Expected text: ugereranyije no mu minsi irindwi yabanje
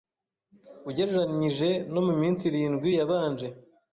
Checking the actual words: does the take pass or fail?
pass